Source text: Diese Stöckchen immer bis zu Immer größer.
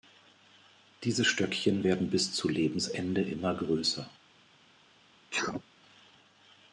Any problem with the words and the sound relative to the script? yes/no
yes